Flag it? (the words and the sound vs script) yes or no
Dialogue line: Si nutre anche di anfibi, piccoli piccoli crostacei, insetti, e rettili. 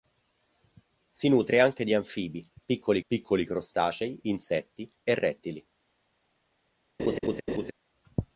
yes